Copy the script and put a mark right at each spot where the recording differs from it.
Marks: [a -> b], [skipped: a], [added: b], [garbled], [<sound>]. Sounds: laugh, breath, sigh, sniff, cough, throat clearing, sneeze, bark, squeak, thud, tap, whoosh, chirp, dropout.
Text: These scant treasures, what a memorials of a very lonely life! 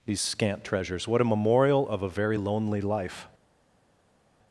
These scant treasures, what a [memorials -> memorial] of a very lonely life!